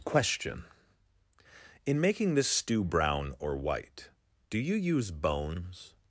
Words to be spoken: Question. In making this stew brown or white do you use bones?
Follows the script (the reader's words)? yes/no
yes